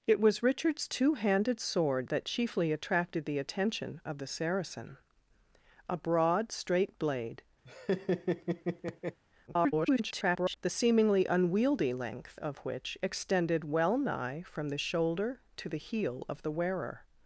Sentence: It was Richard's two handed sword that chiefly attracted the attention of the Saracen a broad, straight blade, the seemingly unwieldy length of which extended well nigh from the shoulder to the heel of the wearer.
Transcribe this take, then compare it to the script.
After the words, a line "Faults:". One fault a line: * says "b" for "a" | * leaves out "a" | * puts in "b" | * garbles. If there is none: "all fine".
It was Richard's two handed sword that chiefly attracted the attention of the Saracen a broad, straight blade, [garbled] the seemingly unwieldy length of which extended well nigh from the shoulder to the heel of the wearer.
Faults:
* garbles